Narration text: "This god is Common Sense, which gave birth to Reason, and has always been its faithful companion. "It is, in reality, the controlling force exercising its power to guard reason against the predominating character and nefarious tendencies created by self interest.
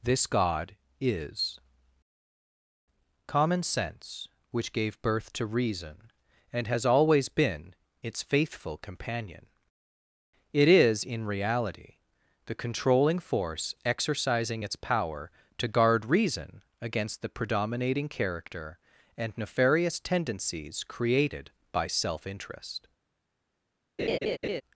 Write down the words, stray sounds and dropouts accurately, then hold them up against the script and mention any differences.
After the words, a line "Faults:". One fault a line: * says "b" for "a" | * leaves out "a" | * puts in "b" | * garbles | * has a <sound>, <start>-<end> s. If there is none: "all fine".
"This god is Common Sense, which gave birth to Reason, and has always been its faithful companion. "It is, in reality, the controlling force exercising its power to guard reason against the predominating character and nefarious tendencies created by self interest.
Faults:
* has a laugh, 24.0-24.6 s